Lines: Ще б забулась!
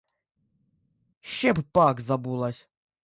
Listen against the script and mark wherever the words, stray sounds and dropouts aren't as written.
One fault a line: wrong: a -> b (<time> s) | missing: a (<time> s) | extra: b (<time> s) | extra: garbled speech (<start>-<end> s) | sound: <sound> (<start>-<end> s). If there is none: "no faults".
extra: пак (1.7 s)